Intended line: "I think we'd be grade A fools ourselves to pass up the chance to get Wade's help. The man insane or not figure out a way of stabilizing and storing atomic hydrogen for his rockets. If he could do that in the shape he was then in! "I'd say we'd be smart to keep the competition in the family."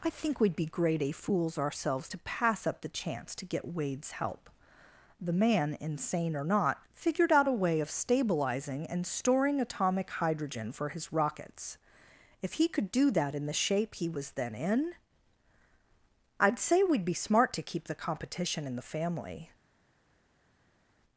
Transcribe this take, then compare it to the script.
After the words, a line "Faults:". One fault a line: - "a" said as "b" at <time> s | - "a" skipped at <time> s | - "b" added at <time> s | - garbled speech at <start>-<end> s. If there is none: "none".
"I think we'd be grade A fools ourselves to pass up the chance to get Wade's help. The man insane or not figured out a way of stabilizing and storing atomic hydrogen for his rockets. If he could do that in the shape he was then in! "I'd say we'd be smart to keep the competition in the family."
Faults:
- "figure" said as "figured" at 6.9 s